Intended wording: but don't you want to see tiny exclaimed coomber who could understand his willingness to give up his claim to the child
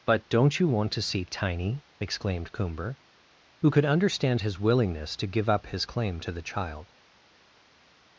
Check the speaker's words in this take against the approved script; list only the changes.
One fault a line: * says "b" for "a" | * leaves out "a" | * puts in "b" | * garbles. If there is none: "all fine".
all fine